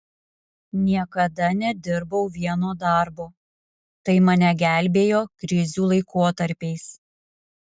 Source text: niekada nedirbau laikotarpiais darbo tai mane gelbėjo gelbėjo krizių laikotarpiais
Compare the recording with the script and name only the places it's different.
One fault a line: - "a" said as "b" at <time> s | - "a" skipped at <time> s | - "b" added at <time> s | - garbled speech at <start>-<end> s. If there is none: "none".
- "laikotarpiais" said as "vieno" at 2.4 s
- "gelbėjo" skipped at 5.2 s